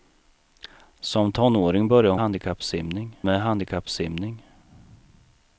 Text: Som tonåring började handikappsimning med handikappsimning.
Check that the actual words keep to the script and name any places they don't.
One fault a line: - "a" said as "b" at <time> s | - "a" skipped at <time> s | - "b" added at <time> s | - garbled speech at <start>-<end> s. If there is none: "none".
none